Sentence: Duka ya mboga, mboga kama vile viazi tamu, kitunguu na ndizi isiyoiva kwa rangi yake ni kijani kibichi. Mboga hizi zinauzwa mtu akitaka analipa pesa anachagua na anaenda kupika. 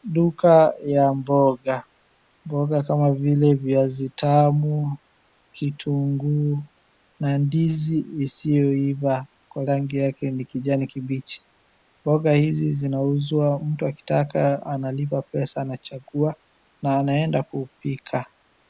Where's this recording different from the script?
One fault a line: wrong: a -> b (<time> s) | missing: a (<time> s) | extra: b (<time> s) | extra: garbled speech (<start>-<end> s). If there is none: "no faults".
no faults